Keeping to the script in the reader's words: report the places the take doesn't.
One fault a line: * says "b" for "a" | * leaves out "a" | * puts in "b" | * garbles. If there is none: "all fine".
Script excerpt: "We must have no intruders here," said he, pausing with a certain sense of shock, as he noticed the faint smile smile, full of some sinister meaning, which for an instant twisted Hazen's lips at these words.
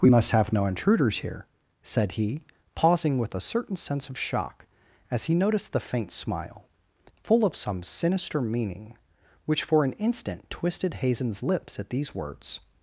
* leaves out "smile"